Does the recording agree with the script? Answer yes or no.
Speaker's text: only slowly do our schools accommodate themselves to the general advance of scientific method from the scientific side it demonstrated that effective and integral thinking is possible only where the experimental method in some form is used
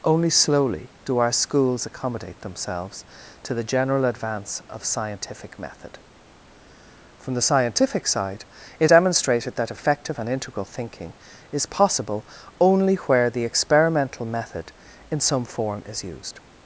yes